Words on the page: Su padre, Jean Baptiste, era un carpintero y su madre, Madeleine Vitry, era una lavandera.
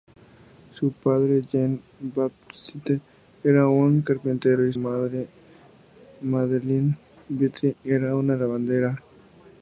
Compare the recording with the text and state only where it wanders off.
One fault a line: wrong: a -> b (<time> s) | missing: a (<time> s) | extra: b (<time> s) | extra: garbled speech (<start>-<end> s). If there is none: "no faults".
missing: su (4.7 s)